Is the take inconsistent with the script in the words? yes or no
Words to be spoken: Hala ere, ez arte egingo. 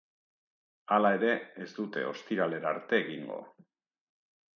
yes